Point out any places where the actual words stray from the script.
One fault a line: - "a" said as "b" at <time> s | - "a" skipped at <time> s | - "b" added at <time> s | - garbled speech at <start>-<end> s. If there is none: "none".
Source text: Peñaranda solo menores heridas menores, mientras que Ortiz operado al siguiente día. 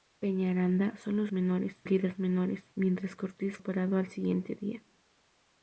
none